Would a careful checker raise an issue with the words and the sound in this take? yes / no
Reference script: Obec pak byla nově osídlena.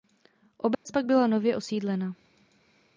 yes